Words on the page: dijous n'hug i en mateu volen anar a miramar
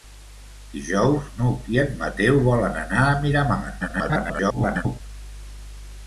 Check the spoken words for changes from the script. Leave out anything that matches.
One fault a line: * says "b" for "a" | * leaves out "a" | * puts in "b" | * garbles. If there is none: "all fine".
* garbles